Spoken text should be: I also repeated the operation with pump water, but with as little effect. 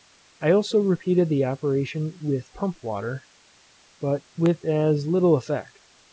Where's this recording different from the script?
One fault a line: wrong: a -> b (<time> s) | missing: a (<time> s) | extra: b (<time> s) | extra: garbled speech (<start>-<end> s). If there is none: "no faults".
no faults